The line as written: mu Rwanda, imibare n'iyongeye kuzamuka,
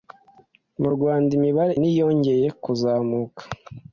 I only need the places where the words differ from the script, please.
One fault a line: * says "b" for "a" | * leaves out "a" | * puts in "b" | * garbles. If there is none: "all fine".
all fine